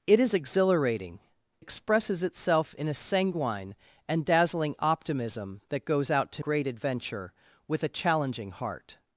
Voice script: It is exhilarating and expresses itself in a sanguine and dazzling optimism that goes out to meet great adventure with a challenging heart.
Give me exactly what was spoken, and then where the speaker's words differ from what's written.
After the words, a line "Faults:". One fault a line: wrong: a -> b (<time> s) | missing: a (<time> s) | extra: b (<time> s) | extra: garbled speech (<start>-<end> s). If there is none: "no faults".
It is exhilarating expresses itself in a sanguine and dazzling optimism that goes out to great adventure with a challenging heart.
Faults:
missing: and (1.2 s)
missing: meet (6.4 s)